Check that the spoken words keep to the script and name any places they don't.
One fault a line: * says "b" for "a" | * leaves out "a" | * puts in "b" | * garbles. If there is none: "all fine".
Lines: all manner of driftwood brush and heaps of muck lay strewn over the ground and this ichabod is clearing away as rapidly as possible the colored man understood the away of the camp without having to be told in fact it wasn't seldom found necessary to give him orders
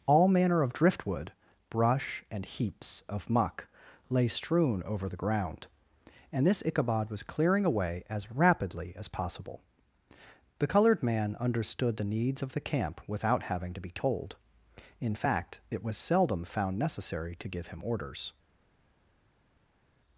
* says "was" for "is"
* says "needs" for "away"
* says "was" for "wasn't"